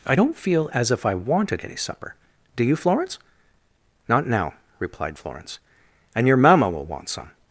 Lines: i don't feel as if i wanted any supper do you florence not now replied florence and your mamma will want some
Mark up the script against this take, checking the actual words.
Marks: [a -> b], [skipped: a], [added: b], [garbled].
i don't feel as if i wanted any supper do you florence not now replied florence and your mamma will want some